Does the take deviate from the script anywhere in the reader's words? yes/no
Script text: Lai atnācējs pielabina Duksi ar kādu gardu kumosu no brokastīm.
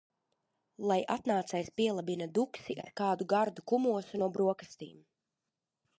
no